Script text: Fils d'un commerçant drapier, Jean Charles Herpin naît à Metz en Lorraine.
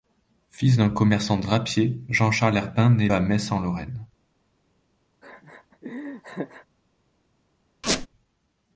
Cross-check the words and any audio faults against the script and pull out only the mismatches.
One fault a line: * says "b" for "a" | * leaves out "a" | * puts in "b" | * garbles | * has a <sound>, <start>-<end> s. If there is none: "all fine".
* has a laugh, 5.2-6.7 s
* has a squeak, 7.8-8.1 s